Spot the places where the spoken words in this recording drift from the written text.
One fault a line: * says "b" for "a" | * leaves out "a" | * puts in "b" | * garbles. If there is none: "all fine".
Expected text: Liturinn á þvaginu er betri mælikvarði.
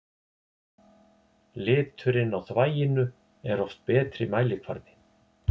* puts in "oft"